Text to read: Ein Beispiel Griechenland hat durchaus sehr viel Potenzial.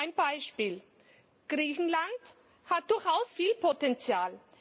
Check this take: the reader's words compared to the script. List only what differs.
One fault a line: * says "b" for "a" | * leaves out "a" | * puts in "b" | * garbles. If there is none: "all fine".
* leaves out "sehr"